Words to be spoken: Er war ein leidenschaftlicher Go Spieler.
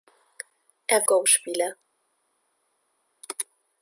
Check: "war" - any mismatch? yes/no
yes